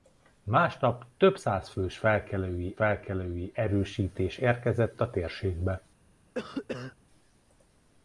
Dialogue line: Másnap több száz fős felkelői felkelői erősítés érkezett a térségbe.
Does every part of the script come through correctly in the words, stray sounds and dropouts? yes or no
no